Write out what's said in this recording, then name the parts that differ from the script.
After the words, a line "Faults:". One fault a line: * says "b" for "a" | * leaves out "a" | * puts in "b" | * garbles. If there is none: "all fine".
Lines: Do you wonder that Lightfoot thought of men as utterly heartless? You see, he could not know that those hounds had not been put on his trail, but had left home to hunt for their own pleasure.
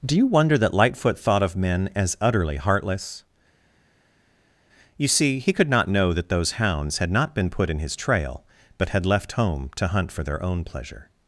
Do you wonder that Lightfoot thought of men as utterly heartless? You see, he could not know that those hounds had not been put in his trail, but had left home to hunt for their own pleasure.
Faults:
* says "in" for "on"